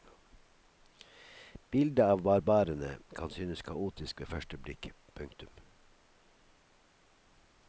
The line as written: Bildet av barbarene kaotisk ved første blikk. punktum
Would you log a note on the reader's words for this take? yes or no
yes